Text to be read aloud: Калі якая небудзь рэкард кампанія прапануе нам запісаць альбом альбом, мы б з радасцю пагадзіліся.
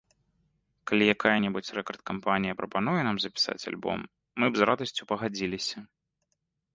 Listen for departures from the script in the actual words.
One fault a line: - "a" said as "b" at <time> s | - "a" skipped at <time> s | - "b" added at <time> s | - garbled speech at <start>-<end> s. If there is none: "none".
- "альбом" skipped at 4.0 s